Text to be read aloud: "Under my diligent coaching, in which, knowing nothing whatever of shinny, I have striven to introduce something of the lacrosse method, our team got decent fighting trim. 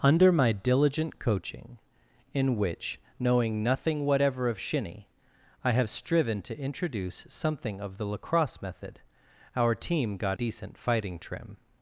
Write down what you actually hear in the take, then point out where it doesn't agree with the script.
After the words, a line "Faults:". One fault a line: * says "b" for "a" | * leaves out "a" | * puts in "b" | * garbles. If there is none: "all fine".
"Under my diligent coaching, in which, knowing nothing whatever of shinny, I have striven to introduce something of the lacrosse method, our team got decent fighting trim.
Faults:
all fine